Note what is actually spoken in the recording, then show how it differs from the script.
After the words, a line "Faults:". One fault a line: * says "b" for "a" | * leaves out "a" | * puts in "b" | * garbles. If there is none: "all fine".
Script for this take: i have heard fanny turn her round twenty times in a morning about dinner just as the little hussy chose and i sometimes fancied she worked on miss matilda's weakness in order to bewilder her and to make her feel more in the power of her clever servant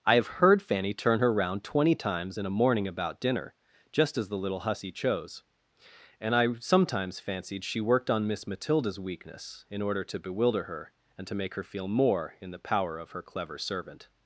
i have heard fanny turn her round twenty times in a morning about dinner just as the little hussy chose and i sometimes fancied she worked on miss matilda's weakness in order to bewilder her and to make her feel more in the power of her clever servant
Faults:
all fine